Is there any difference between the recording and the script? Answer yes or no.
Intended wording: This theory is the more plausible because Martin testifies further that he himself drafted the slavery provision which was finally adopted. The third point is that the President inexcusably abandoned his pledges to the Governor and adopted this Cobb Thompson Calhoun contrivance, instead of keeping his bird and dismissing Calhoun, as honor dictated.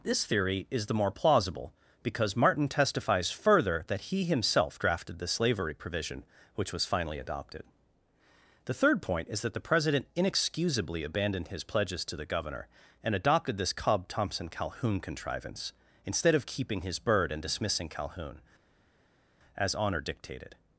no